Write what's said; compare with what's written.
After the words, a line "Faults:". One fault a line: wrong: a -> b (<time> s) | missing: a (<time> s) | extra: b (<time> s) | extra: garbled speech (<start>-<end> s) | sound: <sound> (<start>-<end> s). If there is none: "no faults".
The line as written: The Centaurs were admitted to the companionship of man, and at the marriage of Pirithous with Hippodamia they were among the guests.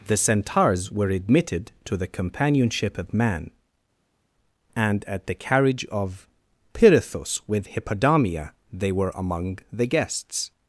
The Centaurs were admitted to the companionship of man, and at the carriage of Pirithous with Hippodamia they were among the guests.
Faults:
wrong: marriage -> carriage (5.3 s)